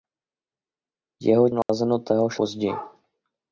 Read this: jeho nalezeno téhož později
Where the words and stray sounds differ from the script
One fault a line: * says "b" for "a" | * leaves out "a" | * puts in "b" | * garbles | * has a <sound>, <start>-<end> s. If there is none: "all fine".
* has a dropout, 1.6-1.7 s